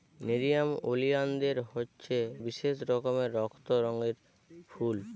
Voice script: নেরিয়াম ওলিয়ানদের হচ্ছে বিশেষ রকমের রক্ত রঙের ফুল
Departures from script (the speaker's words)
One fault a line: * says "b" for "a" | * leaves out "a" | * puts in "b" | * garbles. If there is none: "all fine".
all fine